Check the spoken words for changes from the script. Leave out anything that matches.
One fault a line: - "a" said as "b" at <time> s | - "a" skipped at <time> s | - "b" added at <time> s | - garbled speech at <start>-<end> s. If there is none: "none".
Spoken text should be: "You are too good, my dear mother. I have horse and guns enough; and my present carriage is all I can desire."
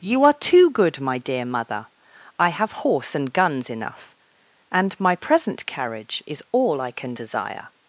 none